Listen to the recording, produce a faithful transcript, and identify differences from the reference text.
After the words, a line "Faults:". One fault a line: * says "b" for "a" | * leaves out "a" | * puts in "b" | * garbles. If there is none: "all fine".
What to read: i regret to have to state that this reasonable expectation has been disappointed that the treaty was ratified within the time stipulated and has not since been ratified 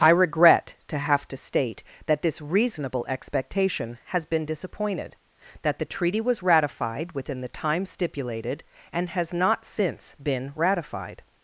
i regret to have to state that this reasonable expectation has been disappointed that the treaty was ratified within the time stipulated and has not since been ratified
Faults:
all fine